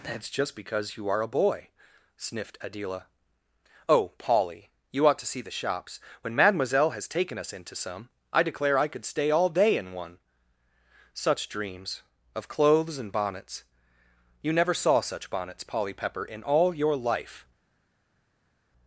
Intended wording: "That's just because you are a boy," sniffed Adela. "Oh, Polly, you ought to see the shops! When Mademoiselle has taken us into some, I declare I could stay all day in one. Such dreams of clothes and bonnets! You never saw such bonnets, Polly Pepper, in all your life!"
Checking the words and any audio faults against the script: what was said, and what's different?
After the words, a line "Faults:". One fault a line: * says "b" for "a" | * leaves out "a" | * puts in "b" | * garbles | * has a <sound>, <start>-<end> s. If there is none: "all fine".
"That's just because you are a boy," sniffed Adela. "Oh, Polly, you ought to see the shops! When Mademoiselle has taken us into some, I declare I could stay all day in one. Such dreams of clothes and bonnets! You never saw such bonnets, Polly Pepper, in all your life!"
Faults:
all fine